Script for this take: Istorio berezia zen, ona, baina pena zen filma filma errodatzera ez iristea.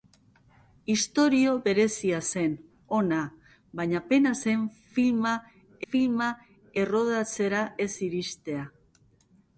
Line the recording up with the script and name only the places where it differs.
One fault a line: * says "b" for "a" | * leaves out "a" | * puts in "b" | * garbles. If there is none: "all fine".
all fine